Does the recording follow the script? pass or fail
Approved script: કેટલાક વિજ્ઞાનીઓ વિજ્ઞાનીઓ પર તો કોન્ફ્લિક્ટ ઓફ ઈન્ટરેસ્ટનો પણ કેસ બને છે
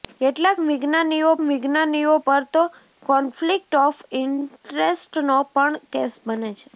pass